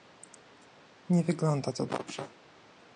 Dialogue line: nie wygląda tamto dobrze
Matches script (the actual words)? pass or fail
fail